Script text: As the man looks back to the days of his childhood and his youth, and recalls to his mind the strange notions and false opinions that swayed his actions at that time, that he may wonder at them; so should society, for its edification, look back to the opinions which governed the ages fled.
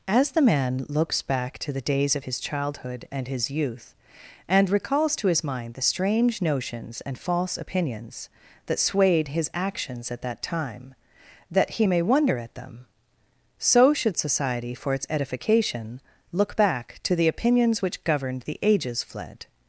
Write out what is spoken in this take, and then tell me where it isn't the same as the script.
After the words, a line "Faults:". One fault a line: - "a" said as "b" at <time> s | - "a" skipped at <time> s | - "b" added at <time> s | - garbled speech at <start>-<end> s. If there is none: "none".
As the man looks back to the days of his childhood and his youth, and recalls to his mind the strange notions and false opinions that swayed his actions at that time, that he may wonder at them; so should society, for its edification, look back to the opinions which governed the ages fled.
Faults:
none